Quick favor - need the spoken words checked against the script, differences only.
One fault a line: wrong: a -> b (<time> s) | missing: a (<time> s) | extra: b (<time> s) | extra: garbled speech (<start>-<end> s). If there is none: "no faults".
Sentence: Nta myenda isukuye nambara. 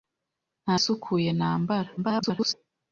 missing: myenda (0.7 s)
extra: garbled speech (2.0-2.5 s)